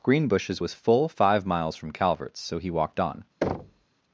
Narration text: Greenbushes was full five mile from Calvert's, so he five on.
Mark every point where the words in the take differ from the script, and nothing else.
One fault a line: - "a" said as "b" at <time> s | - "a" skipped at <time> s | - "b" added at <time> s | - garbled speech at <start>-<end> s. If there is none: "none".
- "mile" said as "miles" at 1.5 s
- "five" said as "walked" at 2.7 s